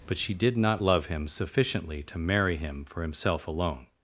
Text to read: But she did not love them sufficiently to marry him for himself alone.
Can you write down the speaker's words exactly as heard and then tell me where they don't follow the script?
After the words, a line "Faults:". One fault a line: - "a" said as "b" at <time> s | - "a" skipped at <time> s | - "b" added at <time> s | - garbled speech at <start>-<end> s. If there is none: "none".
But she did not love him sufficiently to marry him for himself alone.
Faults:
- "them" said as "him" at 1.1 s